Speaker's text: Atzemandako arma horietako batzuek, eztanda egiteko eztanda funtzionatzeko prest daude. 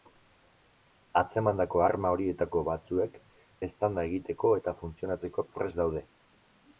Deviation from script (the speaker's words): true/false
true